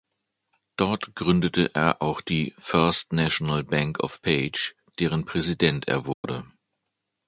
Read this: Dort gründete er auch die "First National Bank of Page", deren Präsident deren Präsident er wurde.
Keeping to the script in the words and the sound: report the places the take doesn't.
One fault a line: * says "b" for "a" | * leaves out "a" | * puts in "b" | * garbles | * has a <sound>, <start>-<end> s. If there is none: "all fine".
* leaves out "deren Präsident"
* has a dropout, 6.1-6.2 s